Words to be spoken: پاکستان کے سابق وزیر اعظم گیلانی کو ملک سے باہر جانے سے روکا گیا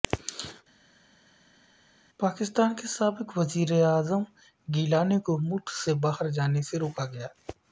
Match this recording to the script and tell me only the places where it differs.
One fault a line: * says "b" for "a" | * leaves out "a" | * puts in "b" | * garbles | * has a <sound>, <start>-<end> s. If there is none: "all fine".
all fine